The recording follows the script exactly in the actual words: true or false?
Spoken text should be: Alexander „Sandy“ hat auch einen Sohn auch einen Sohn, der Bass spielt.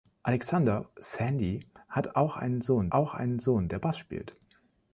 true